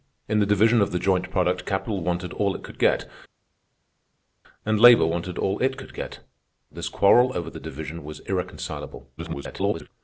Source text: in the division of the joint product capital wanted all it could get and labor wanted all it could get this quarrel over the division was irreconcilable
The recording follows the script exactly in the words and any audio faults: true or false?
false